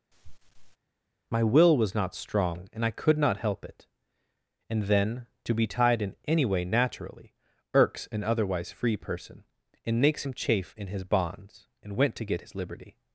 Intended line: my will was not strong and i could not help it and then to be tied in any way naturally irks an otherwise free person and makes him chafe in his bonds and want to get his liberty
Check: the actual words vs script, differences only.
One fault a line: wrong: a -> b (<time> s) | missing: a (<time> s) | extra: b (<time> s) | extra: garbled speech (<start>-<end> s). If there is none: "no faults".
wrong: want -> went (12.0 s)